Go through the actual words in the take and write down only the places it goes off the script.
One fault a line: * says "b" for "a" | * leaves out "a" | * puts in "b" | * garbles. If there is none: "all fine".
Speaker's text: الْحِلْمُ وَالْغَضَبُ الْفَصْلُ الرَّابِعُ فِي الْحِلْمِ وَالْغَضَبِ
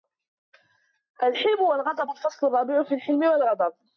all fine